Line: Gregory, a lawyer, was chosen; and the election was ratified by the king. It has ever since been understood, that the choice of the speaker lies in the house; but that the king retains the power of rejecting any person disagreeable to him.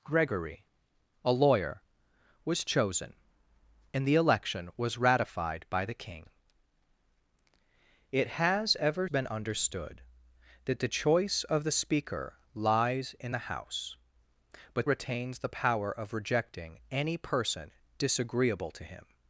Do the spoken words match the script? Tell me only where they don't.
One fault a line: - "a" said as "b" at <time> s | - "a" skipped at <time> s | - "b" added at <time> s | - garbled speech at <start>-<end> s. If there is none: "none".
- "since" skipped at 9.1 s
- "that the king" skipped at 14.9 s